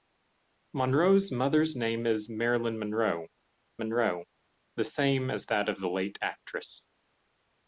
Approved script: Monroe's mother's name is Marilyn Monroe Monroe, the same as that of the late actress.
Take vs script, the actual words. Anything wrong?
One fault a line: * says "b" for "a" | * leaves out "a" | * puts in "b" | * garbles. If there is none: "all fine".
all fine